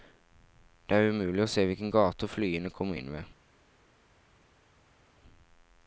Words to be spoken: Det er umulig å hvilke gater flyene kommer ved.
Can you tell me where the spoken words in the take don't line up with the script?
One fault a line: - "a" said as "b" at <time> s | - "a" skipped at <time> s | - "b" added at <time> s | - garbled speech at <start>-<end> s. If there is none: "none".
- "se" added at 1.5 s
- "inn" added at 3.0 s